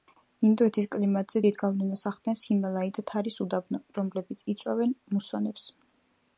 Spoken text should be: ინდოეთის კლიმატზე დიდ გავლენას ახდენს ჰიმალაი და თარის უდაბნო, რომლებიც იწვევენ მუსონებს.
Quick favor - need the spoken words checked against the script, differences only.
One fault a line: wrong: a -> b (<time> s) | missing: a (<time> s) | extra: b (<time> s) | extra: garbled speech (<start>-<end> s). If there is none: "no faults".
no faults